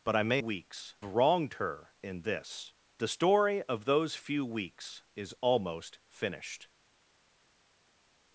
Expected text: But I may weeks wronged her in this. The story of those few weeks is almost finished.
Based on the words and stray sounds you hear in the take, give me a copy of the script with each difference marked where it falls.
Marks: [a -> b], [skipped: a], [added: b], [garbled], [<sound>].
But I may weeks wronged her in this. The story of those few weeks is almost finished.